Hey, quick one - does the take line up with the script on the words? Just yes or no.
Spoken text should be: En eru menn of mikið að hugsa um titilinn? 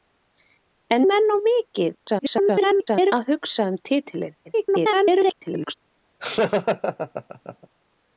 no